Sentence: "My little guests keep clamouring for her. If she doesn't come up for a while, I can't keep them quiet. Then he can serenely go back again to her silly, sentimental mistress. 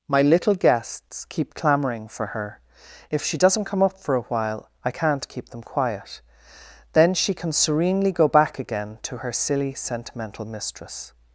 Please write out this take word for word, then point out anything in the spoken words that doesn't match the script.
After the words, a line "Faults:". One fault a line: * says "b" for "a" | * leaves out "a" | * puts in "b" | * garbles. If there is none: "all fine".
"My little guests keep clamouring for her. If she doesn't come up for a while, I can't keep them quiet. Then she can serenely go back again to her silly, sentimental mistress.
Faults:
* says "she" for "he"